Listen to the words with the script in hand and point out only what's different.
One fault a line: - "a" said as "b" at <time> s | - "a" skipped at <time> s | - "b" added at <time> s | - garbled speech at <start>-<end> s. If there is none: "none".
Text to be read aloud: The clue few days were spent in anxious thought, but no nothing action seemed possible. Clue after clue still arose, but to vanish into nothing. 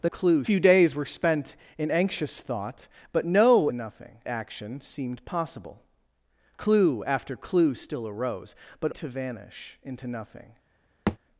none